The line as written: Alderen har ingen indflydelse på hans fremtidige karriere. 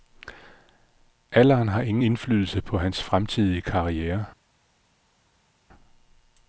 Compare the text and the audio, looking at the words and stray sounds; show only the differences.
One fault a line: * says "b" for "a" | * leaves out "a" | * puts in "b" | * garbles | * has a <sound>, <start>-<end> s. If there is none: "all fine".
all fine